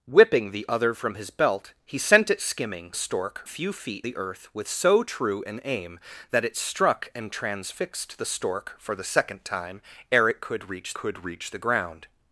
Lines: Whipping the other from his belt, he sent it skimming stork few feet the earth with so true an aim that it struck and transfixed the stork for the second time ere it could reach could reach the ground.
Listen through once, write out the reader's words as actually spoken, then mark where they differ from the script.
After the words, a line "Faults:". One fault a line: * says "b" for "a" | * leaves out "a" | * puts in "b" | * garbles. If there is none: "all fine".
Whipping the other from his belt, he sent it skimming stork few feet the earth with so true an aim that it struck and transfixed the stork for the second time ere it could reach could reach the ground.
Faults:
all fine